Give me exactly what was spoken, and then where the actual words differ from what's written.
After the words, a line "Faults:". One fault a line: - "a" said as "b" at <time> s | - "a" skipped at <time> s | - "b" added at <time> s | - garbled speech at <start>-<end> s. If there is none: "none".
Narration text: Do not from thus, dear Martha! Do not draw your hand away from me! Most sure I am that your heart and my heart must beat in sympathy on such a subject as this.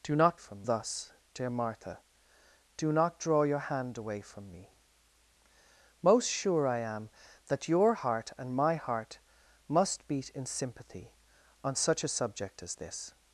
Do not from thus, dear Martha! Do not draw your hand away from me! Most sure I am that your heart and my heart must beat in sympathy on such a subject as this.
Faults:
none